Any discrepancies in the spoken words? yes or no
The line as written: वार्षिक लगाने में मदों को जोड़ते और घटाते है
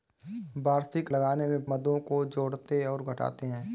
no